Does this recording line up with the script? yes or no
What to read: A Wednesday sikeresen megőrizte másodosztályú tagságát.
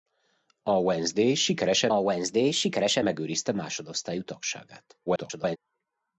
no